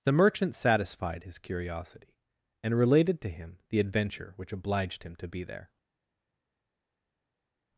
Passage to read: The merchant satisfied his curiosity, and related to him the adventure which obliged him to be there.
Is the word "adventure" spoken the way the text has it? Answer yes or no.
yes